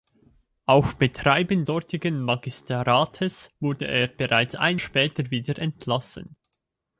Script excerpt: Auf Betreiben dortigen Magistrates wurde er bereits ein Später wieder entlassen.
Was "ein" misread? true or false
false